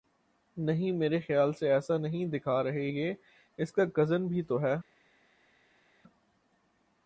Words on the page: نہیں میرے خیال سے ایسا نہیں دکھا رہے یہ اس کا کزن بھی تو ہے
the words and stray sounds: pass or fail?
pass